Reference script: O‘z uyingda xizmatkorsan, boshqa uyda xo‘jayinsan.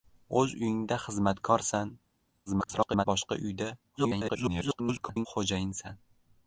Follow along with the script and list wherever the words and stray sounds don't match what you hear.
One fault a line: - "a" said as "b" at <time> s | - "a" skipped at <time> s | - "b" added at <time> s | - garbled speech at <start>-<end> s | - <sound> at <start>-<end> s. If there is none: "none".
- garbled speech at 2.5-3.0 s
- garbled speech at 4.0-5.3 s